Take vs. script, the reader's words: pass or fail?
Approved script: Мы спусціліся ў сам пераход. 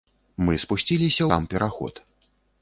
fail